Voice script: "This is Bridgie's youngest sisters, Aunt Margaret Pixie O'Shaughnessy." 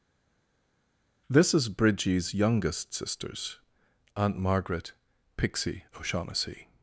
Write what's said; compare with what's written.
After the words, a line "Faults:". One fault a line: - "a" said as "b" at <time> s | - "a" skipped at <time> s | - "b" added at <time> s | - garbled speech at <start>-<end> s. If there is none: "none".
"This is Bridgie's youngest sisters, Aunt Margaret Pixie O'Shaughnessy."
Faults:
none